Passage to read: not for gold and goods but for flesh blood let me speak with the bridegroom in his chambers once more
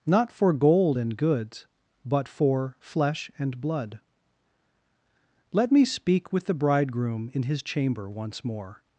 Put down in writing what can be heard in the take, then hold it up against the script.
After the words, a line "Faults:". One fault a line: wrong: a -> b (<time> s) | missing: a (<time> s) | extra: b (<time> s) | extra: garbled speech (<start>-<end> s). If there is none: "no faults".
not for gold and goods but for flesh and blood let me speak with the bridegroom in his chamber once more
Faults:
extra: and (3.4 s)
wrong: chambers -> chamber (7.6 s)